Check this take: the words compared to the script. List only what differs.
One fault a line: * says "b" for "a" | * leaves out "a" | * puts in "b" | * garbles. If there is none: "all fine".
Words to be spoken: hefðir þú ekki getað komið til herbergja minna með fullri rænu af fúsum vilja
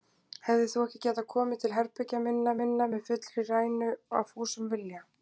* puts in "minna"